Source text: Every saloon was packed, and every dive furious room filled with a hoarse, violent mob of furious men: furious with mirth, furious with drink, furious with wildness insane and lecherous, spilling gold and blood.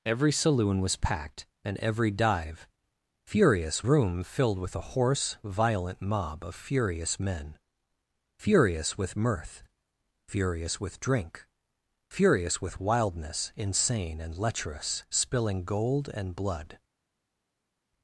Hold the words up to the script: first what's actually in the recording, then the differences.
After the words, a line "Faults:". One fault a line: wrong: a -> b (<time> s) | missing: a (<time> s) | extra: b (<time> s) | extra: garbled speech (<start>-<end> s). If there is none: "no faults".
Every saloon was packed, and every dive furious room filled with a hoarse, violent mob of furious men: furious with mirth, furious with drink, furious with wildness insane and lecherous, spilling gold and blood.
Faults:
no faults